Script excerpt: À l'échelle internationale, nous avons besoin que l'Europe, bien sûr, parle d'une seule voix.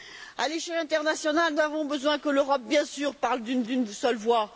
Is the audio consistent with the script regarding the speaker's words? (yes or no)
no